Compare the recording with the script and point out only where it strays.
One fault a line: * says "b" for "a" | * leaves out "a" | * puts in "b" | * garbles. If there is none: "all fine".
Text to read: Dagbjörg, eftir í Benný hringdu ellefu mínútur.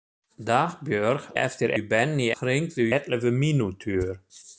all fine